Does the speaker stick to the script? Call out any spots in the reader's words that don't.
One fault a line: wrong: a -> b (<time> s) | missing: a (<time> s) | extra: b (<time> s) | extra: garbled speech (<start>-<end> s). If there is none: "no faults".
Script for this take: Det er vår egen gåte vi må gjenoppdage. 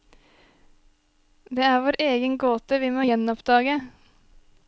no faults